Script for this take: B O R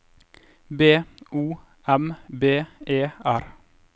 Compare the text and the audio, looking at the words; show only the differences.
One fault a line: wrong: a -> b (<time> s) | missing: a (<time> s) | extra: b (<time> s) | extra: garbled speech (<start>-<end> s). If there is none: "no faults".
extra: M B E (1.9 s)